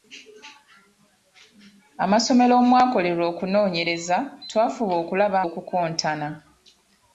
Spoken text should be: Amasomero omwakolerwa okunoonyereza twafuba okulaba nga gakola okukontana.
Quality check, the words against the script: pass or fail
fail